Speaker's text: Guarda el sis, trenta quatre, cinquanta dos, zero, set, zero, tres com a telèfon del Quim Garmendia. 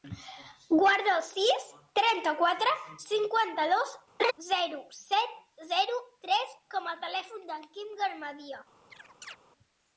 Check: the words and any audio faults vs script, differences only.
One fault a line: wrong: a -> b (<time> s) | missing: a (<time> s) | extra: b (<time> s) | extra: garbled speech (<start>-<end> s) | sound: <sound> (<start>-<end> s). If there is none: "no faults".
sound: laugh (4.2-4.3 s)
sound: chirp (8.9-9.4 s)